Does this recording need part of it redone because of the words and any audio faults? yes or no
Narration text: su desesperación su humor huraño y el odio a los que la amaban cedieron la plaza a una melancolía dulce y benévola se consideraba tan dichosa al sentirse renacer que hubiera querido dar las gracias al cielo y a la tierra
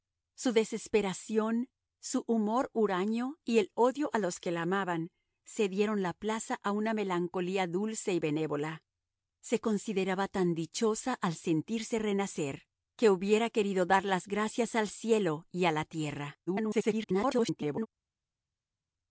yes